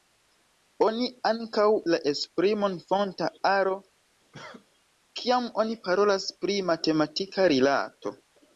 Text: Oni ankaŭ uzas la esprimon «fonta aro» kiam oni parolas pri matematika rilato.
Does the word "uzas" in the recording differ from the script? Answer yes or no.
yes